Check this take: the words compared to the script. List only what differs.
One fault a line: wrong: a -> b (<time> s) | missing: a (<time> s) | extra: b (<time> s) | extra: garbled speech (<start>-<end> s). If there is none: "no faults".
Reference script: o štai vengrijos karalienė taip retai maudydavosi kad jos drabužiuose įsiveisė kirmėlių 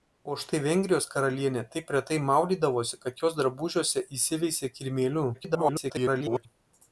extra: garbled speech (5.3-6.5 s)